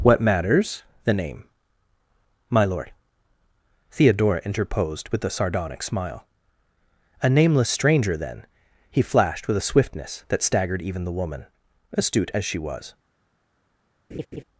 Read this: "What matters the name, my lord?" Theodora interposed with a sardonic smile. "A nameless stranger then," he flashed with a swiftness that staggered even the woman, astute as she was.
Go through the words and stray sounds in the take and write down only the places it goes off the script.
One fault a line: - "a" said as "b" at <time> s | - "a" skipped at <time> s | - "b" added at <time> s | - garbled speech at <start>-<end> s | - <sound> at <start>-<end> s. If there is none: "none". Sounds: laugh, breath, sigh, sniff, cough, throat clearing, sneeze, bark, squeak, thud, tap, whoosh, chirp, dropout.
- laugh at 14.1-14.4 s